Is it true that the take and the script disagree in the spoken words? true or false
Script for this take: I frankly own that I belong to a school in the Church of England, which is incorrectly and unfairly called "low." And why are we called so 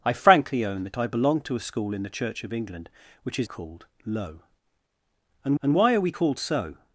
true